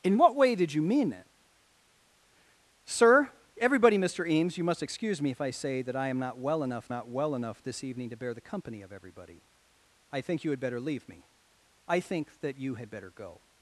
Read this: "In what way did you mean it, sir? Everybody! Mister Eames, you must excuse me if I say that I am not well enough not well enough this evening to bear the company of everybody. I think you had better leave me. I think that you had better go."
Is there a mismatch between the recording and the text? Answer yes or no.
no